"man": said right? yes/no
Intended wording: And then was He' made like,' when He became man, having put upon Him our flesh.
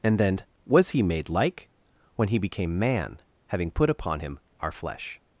yes